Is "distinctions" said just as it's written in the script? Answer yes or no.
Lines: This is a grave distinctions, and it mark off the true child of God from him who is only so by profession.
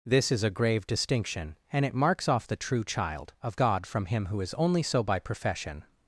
no